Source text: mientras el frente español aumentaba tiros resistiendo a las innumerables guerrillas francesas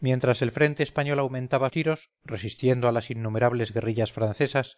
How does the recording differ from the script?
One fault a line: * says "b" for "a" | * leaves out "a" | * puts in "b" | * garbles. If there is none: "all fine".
all fine